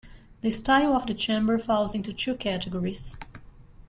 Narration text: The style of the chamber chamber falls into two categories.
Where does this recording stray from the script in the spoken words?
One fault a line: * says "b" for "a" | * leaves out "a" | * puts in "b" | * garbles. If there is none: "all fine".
* leaves out "chamber"